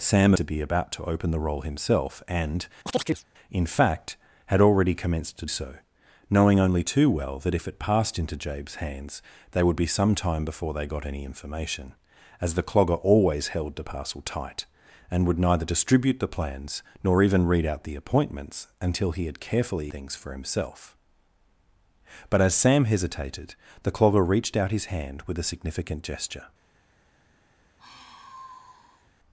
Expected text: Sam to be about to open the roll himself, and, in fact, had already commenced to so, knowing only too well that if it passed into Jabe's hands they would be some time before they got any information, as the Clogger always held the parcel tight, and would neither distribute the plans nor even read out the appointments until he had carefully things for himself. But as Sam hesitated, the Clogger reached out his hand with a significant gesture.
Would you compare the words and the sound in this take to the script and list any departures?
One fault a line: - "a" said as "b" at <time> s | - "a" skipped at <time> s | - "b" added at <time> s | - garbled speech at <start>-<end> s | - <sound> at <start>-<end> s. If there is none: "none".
- chirp at 2.9-3.2 s
- sigh at 27.8-29.1 s